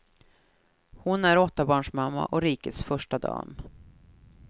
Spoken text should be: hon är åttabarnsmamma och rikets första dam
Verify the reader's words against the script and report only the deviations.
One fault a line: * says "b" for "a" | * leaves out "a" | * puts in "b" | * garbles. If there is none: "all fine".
all fine